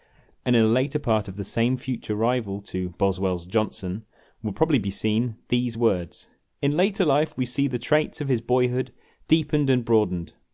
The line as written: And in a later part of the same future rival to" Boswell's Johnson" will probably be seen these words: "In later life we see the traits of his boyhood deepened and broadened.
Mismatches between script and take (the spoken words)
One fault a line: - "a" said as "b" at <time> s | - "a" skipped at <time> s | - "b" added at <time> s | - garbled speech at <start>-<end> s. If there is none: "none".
none